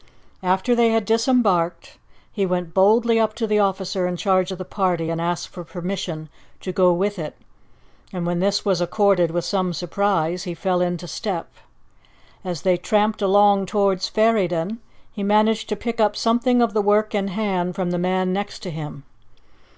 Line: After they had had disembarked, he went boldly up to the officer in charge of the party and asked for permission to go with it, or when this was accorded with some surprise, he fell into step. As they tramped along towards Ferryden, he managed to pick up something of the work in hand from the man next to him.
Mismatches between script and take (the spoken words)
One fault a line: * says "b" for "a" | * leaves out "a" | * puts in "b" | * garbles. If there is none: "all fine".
* leaves out "had"
* says "and" for "or"